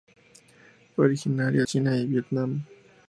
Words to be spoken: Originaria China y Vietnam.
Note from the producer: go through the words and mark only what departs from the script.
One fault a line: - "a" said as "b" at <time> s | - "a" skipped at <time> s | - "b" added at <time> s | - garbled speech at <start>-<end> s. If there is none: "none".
none